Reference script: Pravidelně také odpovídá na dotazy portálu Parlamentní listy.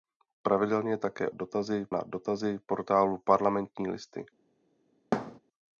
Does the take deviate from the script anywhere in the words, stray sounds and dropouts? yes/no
yes